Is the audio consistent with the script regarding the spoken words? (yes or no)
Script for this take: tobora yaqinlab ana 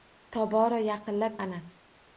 yes